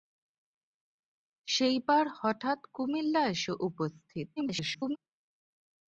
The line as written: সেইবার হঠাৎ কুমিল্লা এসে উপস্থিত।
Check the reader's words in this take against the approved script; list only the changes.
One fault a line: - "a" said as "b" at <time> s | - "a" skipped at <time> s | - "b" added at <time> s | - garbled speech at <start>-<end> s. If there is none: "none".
- garbled speech at 4.4-5.0 s